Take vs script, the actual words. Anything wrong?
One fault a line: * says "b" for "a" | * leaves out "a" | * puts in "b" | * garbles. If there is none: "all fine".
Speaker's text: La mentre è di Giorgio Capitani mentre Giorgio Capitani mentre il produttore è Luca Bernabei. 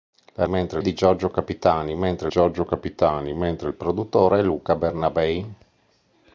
all fine